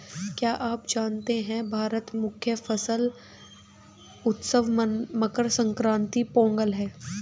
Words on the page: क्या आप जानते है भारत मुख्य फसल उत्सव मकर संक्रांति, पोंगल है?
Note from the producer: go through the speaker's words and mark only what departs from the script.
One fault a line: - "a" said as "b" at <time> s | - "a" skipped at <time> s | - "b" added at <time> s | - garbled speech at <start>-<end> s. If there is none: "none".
none